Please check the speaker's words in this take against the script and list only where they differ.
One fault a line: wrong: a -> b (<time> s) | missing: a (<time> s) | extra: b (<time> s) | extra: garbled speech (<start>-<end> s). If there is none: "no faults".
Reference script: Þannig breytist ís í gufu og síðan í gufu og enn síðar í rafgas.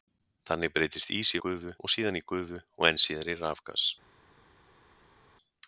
no faults